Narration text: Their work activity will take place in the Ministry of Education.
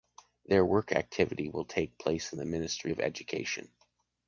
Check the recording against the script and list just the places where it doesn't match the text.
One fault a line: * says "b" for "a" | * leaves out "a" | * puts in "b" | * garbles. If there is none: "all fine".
all fine